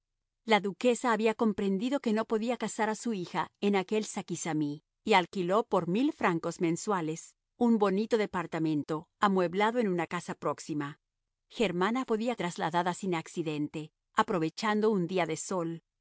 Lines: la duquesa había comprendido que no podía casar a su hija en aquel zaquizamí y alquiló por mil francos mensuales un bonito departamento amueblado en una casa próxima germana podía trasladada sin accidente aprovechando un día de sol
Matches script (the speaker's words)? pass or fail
pass